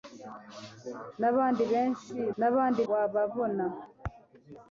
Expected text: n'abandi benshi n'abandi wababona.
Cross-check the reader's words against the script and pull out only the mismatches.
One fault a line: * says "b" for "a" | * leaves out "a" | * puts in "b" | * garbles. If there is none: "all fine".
all fine